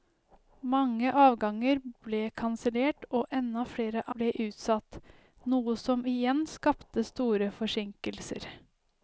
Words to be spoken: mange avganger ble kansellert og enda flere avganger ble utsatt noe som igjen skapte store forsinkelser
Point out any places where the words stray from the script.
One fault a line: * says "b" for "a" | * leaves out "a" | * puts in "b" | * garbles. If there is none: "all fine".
* leaves out "avganger"